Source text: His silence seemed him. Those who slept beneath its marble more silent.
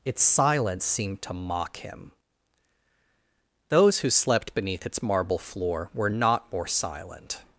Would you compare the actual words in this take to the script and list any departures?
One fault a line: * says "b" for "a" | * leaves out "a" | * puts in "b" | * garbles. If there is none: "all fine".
* says "Its" for "His"
* puts in "to mock"
* puts in "floor were not"